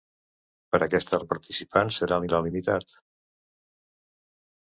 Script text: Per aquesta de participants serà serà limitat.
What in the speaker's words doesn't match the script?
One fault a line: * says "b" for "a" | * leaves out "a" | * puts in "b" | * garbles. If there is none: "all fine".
all fine